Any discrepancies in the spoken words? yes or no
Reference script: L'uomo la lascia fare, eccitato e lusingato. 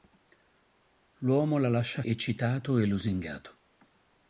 yes